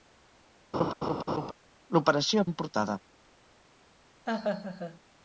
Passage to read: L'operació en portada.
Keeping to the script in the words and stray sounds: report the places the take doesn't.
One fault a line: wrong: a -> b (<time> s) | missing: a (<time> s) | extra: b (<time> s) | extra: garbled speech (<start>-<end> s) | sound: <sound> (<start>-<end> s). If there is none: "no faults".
sound: laugh (0.7-1.5 s)
sound: laugh (4.3-5.0 s)